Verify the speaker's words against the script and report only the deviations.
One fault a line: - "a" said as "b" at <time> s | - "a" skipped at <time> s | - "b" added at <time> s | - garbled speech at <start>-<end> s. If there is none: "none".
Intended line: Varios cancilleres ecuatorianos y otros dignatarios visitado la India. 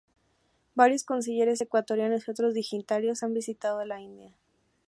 - "han" added at 3.2 s